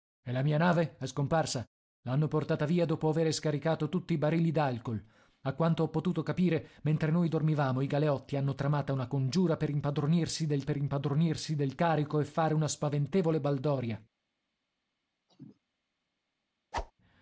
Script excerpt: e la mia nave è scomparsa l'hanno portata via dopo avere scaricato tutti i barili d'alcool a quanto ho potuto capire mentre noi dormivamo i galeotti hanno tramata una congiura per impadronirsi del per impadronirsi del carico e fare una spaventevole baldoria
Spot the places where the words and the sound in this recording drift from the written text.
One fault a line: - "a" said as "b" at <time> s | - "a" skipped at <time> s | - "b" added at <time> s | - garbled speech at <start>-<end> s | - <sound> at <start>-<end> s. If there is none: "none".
- cough at 15.3-15.6 s
- whoosh at 16.7-16.9 s